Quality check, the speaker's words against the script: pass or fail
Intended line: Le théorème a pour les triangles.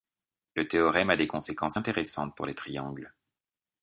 fail